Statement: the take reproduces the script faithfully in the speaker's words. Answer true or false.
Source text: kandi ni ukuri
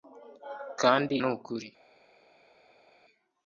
true